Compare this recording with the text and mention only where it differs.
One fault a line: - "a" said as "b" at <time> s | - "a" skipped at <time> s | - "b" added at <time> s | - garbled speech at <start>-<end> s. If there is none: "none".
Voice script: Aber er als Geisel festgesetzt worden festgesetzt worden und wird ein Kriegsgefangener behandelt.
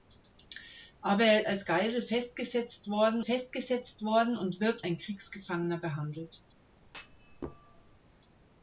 none